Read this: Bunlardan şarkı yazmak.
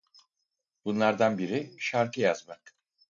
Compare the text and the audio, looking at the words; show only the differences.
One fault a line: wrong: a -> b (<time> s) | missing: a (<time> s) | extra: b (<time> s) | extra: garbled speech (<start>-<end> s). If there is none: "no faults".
extra: biri (1.4 s)